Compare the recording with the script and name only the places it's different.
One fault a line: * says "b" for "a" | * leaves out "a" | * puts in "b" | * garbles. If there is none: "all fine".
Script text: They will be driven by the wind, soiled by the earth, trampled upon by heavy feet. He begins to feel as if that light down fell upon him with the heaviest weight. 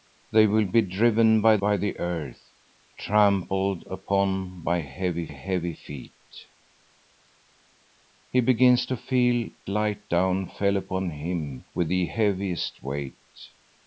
* leaves out "the wind soiled"
* puts in "heavy"
* leaves out "as if that"